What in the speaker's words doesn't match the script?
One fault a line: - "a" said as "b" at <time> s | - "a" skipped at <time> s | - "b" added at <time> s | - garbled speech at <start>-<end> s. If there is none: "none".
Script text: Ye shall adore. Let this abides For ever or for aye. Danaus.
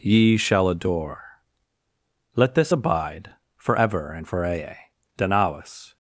- "abides" said as "abide" at 2.7 s
- "or" said as "and" at 4.1 s